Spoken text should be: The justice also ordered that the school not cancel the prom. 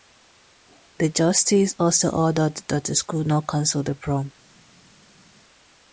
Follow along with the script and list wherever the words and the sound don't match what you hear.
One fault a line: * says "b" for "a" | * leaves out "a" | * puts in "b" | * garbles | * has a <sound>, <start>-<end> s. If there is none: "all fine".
all fine